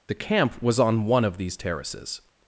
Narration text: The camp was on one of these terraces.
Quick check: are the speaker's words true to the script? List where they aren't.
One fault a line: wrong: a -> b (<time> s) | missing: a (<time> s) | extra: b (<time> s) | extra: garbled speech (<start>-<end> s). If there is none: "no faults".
no faults